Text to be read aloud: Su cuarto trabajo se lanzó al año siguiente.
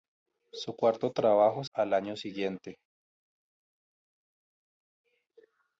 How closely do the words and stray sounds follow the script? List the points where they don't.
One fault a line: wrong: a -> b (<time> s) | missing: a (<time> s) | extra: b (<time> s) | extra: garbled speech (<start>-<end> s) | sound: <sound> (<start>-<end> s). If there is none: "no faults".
missing: se lanzó (1.6 s)